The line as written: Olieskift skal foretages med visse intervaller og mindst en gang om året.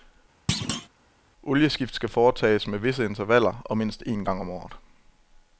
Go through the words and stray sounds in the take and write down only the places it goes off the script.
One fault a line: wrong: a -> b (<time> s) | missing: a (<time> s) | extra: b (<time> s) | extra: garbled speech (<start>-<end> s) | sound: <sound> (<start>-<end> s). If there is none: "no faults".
sound: thud (0.5-0.9 s)